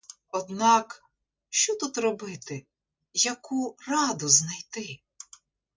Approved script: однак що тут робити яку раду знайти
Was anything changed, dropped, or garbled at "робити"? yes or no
no